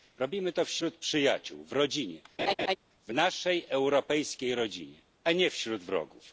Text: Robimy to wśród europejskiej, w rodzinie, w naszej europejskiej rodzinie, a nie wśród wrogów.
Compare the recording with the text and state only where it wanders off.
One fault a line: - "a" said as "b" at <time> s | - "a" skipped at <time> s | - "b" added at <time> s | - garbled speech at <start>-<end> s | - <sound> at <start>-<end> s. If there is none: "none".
- "europejskiej" said as "przyjaciół" at 1.0 s
- laugh at 2.4-2.8 s